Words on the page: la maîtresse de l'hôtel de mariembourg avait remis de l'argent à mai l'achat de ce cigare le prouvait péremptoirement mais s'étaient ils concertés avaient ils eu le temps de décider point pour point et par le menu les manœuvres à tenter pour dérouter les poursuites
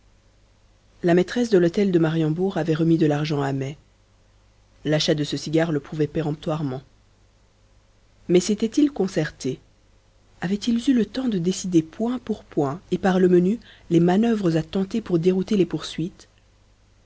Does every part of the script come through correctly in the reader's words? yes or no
yes